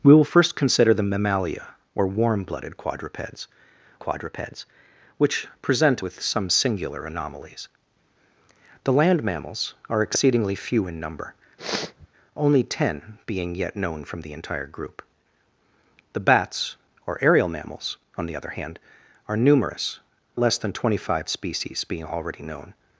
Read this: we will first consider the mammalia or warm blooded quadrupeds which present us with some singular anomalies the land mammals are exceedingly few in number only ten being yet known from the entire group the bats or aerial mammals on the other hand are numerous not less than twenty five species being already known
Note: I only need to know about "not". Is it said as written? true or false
false